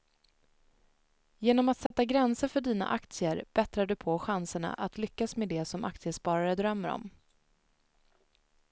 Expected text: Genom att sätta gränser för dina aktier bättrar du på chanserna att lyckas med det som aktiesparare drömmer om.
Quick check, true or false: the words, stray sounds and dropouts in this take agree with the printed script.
false